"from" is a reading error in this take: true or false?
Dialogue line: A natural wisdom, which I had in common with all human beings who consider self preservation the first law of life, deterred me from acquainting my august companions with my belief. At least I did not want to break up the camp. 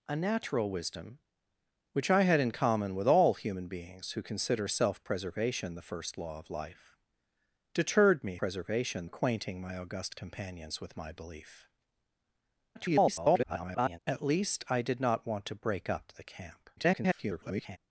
true